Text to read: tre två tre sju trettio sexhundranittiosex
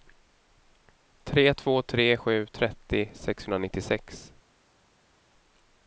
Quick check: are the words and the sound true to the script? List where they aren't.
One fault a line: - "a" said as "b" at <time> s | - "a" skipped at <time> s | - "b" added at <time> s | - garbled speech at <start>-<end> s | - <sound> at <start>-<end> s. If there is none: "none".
none